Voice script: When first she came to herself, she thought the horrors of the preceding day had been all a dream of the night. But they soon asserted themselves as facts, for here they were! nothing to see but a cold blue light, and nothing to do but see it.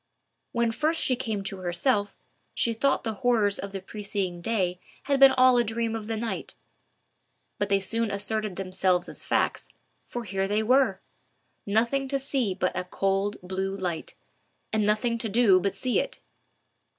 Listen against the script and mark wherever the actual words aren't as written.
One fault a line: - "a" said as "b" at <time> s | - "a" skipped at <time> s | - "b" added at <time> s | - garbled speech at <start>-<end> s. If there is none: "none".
none